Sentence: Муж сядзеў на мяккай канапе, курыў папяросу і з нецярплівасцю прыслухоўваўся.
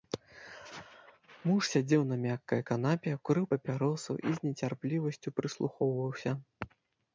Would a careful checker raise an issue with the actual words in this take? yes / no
no